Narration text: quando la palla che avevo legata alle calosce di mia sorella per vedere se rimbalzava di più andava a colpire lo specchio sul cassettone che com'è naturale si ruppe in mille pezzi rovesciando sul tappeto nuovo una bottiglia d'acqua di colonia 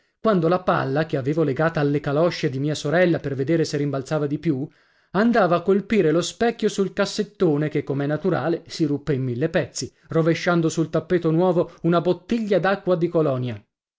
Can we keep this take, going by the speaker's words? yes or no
yes